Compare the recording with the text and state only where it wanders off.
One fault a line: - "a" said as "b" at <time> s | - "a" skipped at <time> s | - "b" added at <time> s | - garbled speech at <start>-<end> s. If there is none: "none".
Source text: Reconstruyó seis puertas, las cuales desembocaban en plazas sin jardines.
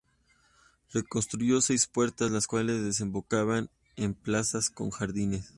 - "sin" said as "con" at 4.7 s